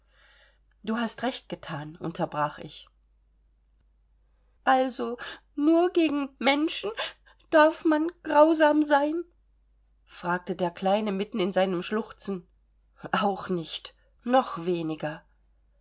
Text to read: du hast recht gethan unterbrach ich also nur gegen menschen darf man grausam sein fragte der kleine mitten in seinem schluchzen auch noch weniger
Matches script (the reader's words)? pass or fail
fail